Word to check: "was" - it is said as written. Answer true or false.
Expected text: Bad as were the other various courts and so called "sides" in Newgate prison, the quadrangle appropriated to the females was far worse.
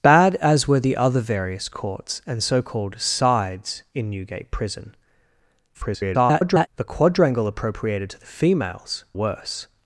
false